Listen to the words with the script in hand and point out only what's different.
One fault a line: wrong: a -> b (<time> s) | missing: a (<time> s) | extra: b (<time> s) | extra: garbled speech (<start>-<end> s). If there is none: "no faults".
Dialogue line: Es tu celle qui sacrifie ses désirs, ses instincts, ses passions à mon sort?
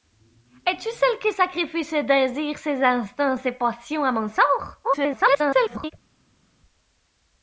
extra: garbled speech (4.8-5.9 s)